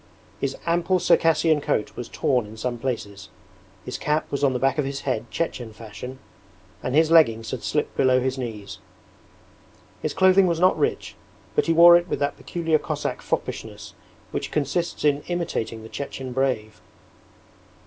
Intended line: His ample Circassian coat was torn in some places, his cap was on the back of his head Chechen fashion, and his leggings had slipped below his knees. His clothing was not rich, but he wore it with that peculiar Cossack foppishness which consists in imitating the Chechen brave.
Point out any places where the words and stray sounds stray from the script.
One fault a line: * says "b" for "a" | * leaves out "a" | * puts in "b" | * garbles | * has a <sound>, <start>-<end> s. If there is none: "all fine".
all fine